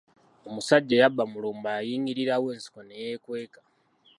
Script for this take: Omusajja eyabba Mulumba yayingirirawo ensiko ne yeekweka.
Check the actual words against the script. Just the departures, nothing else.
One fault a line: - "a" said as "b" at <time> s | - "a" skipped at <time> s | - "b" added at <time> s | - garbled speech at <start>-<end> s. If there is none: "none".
none